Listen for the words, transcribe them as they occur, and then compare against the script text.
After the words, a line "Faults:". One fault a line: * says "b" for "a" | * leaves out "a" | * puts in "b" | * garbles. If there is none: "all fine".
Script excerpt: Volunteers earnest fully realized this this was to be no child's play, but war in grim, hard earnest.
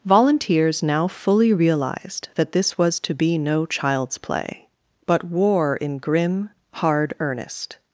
Volunteers now fully realized that this was to be no child's play, but war in grim, hard earnest.
Faults:
* says "now" for "earnest"
* says "that" for "this"